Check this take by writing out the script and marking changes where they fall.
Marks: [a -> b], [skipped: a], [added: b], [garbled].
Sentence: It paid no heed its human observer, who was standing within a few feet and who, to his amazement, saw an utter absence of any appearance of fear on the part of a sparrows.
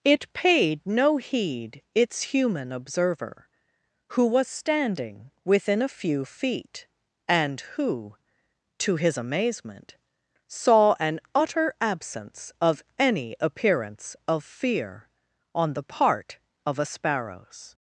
It paid no heed its human observer, who was standing within a few feet and who, to his amazement, saw an utter absence of any appearance of fear on the part of a sparrows.